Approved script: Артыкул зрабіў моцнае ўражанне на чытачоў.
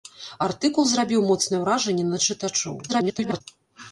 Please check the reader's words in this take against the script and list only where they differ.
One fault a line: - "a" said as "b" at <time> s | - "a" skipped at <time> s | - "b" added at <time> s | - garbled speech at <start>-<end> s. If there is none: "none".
- garbled speech at 2.9-3.4 s